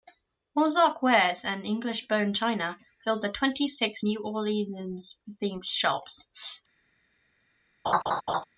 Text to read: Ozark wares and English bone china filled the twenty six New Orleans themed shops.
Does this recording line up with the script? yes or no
yes